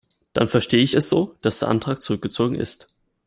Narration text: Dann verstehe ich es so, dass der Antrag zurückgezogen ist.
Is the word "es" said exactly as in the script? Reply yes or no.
yes